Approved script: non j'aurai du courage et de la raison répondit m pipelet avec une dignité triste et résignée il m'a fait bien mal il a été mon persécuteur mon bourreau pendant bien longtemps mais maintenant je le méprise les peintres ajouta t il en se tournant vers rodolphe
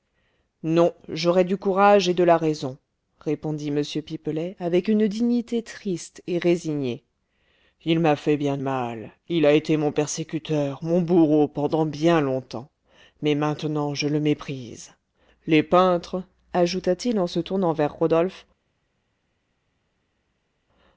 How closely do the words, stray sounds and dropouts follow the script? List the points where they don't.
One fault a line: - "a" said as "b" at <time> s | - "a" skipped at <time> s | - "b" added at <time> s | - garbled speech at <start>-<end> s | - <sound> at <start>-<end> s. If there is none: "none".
none